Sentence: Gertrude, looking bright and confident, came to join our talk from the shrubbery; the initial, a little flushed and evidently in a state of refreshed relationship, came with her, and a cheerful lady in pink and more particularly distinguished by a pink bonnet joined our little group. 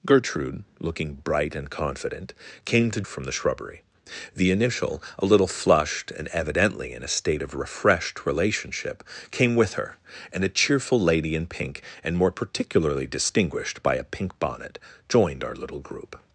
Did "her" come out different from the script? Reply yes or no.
no